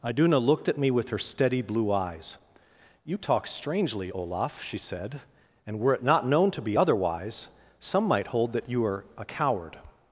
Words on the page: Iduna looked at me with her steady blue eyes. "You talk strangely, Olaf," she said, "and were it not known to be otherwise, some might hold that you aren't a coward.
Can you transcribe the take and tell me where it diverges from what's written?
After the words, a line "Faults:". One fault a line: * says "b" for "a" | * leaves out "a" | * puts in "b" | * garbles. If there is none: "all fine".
Iduna looked at me with her steady blue eyes. "You talk strangely, Olaf," she said, "and were it not known to be otherwise, some might hold that you are a coward.
Faults:
* says "are" for "aren't"